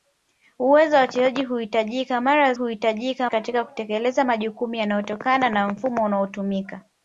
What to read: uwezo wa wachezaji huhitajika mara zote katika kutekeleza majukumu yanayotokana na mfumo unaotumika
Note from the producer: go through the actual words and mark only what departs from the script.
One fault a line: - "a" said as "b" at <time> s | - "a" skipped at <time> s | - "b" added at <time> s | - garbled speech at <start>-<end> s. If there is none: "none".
- "zote" said as "huhitajika" at 2.5 s